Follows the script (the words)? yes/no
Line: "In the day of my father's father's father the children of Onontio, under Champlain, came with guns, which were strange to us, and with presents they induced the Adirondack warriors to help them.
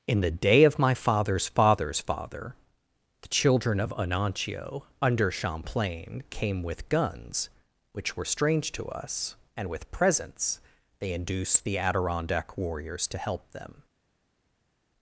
yes